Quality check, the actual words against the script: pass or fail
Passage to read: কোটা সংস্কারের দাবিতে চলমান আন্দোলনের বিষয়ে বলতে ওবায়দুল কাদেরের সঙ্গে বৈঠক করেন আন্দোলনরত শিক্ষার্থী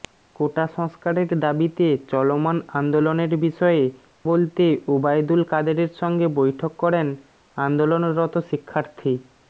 pass